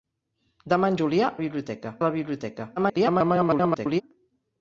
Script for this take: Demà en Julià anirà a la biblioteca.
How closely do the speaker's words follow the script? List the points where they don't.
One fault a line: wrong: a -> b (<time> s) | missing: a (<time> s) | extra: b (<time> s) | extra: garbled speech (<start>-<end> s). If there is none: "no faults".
wrong: anirà -> biblioteca (1.4 s)
extra: garbled speech (2.8-4.0 s)